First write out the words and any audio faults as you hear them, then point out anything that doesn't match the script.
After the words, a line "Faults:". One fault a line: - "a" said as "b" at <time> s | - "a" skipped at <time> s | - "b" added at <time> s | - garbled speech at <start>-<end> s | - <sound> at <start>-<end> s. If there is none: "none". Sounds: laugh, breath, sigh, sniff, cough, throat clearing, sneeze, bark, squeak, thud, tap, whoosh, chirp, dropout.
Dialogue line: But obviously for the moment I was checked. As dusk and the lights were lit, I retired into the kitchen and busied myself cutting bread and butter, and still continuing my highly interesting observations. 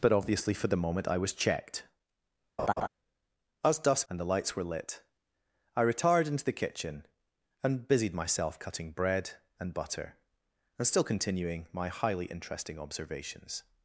But obviously for the moment I was checked. As dusk and the lights were lit, I retired into the kitchen and busied myself cutting bread and butter, and still continuing my highly interesting observations.
Faults:
- laugh at 2.6-2.9 s